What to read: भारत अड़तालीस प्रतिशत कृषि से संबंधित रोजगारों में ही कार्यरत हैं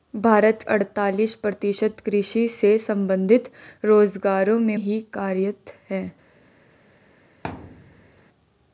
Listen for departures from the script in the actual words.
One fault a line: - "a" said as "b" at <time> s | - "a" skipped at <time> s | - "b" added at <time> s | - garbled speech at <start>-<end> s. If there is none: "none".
none